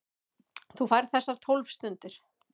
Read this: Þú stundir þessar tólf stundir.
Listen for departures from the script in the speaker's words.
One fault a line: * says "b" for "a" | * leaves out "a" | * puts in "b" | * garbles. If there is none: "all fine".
* says "færð" for "stundir"